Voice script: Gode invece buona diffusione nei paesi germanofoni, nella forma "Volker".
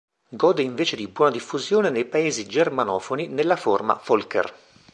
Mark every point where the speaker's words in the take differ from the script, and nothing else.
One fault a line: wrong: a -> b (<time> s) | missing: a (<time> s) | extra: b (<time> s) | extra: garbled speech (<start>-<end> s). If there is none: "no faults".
extra: di (1.0 s)